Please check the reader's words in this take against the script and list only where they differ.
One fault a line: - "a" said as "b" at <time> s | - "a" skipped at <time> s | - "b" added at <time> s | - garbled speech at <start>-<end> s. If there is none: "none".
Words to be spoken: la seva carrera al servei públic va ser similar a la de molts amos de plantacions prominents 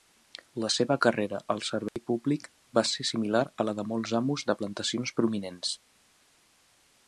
none